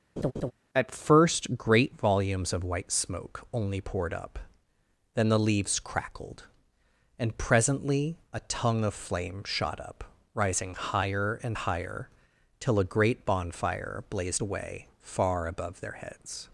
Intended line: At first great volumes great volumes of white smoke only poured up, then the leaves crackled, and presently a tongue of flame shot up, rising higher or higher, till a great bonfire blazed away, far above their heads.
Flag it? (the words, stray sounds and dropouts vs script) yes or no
yes